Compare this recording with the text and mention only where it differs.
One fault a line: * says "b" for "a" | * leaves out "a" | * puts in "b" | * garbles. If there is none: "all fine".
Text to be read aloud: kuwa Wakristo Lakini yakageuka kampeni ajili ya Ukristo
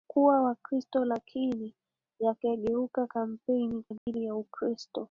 all fine